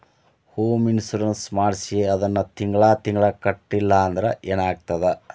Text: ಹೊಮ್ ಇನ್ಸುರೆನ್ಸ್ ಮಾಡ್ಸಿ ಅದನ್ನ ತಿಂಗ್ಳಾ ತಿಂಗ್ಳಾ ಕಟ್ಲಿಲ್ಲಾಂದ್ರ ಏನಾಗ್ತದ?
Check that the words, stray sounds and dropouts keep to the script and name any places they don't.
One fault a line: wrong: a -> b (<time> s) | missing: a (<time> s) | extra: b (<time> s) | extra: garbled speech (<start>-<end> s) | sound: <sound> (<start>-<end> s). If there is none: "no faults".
no faults